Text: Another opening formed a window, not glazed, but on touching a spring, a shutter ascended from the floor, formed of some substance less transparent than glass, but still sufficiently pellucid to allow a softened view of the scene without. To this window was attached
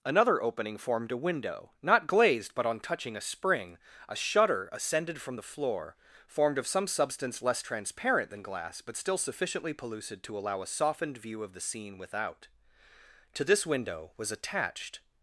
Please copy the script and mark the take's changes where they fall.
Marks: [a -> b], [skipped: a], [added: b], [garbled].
Another opening formed a window, not glazed, but on touching a spring, a shutter ascended from the floor, formed of some substance less transparent than glass, but still sufficiently pellucid to allow a softened view of the scene without. To this window was attached